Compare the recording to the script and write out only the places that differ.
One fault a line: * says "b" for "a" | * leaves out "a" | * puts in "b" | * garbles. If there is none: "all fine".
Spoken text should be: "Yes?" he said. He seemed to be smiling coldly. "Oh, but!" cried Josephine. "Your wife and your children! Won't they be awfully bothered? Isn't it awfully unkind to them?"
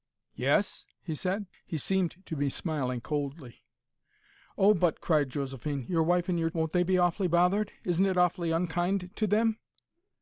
* leaves out "children"